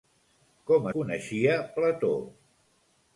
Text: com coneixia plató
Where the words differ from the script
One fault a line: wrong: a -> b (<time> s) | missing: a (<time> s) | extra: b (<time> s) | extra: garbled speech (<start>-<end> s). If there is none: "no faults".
no faults